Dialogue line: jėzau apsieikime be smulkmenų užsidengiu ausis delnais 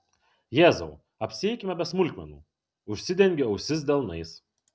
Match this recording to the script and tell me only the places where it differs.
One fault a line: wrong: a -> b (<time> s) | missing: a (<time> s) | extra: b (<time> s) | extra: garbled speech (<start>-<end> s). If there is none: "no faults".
no faults